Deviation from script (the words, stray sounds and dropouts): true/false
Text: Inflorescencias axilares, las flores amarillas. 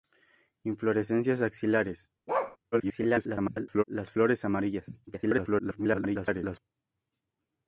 true